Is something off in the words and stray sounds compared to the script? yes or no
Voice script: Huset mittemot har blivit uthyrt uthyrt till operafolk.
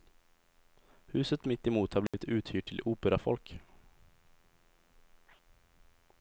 yes